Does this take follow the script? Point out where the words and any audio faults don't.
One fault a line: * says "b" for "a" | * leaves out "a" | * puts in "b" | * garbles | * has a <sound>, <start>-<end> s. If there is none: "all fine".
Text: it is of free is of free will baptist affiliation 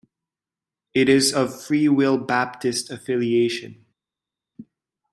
* leaves out "is of free"